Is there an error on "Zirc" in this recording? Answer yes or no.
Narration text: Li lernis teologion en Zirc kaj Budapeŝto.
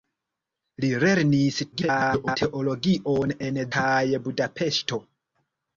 yes